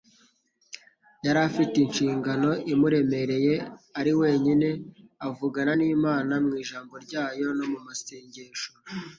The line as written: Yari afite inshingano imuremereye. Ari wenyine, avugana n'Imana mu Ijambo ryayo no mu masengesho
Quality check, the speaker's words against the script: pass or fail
pass